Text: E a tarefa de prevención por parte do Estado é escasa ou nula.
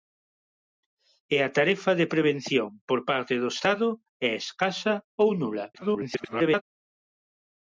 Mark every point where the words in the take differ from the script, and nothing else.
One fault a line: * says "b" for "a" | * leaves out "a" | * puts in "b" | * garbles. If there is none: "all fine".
* garbles